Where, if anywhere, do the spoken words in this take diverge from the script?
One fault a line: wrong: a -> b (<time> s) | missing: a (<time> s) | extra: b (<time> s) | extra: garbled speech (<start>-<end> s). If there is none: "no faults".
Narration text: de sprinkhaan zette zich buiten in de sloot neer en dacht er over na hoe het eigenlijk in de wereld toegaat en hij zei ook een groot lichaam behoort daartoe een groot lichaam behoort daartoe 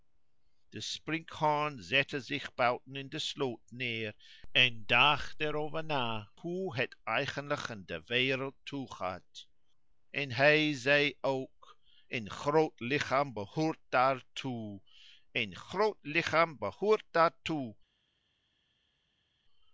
no faults